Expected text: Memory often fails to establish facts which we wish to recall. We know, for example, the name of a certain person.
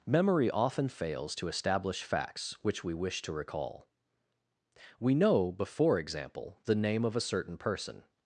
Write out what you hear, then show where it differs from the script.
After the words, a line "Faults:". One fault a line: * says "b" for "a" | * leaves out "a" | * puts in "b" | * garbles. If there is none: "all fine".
Memory often fails to establish facts which we wish to recall. We know, before example, the name of a certain person.
Faults:
* says "before" for "for"